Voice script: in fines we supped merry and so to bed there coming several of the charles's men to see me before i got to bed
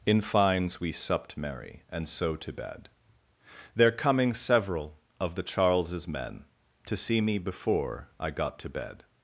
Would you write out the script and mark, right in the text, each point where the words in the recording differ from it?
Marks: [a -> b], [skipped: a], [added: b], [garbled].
in fines we supped merry and so to bed there coming several of the charles's men to see me before i got to bed